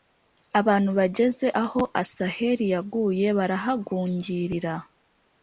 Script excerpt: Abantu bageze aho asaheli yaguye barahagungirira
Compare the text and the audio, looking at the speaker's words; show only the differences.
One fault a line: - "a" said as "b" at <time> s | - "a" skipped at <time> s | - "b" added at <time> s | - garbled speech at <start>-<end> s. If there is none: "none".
none